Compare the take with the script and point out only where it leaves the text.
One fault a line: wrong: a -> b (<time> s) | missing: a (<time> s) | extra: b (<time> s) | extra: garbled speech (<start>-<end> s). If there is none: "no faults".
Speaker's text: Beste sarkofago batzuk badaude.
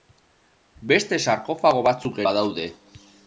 no faults